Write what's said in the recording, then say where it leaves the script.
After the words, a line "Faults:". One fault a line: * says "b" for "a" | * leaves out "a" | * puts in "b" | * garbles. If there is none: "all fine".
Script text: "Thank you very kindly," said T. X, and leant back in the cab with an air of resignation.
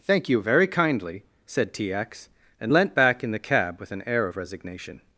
"Thank you very kindly," said T. X, and leant back in the cab with an air of resignation.
Faults:
all fine